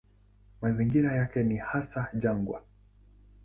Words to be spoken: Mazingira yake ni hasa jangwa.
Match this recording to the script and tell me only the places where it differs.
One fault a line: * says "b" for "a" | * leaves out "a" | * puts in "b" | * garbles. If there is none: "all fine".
all fine